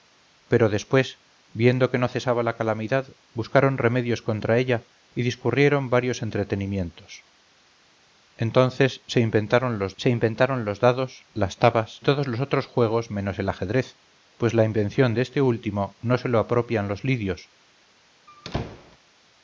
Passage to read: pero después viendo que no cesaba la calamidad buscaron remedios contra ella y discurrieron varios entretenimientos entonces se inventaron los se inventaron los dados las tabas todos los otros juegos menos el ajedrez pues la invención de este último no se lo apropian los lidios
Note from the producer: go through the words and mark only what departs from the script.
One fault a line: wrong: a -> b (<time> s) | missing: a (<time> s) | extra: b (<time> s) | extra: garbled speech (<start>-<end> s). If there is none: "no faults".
no faults